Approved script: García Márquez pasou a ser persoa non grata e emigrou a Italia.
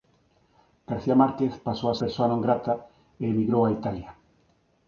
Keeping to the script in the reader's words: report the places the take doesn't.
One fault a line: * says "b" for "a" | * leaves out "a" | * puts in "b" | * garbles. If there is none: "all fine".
* leaves out "ser"